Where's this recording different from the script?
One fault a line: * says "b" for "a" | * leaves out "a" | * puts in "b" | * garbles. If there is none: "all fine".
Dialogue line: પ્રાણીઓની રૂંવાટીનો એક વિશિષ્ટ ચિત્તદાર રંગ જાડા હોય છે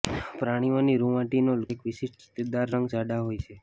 all fine